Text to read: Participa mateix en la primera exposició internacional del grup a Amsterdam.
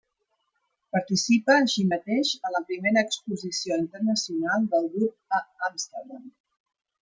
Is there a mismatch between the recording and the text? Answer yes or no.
yes